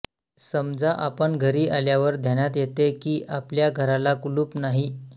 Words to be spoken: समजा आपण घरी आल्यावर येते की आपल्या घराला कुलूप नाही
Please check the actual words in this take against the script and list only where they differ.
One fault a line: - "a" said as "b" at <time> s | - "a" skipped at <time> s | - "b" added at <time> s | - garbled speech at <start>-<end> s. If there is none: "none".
- "ध्यानात" added at 2.2 s